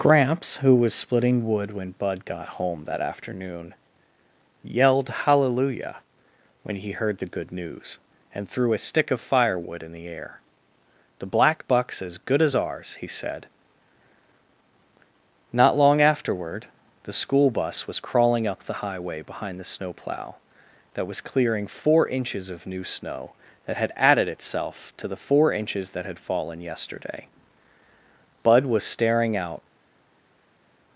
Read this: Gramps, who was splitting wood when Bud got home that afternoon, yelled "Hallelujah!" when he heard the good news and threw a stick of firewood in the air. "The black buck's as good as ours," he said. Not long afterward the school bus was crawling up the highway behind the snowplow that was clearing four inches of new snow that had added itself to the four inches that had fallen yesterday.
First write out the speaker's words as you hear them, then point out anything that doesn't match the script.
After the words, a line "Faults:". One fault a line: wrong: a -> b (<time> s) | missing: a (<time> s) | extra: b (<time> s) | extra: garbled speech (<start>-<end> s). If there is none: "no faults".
Gramps, who was splitting wood when Bud got home that afternoon, yelled "Hallelujah!" when he heard the good news and threw a stick of firewood in the air. "The black buck's as good as ours," he said. Not long afterward the school bus was crawling up the highway behind the snowplow that was clearing four inches of new snow that had added itself to the four inches that had fallen yesterday. Bud was staring out
Faults:
extra: Bud was staring out (28.4 s)